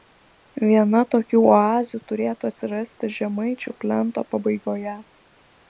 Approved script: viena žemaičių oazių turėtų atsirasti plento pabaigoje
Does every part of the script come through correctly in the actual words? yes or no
no